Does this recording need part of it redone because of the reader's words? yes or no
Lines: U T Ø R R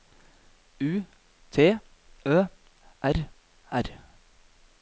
no